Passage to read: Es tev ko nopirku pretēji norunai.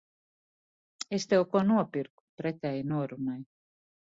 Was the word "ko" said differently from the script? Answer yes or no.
no